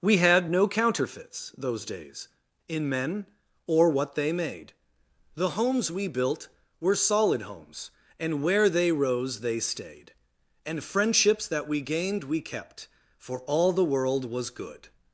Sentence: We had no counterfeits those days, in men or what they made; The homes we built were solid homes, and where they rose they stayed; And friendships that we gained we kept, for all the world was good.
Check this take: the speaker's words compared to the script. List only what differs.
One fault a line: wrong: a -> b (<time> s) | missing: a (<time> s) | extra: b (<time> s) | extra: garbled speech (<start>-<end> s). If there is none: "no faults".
no faults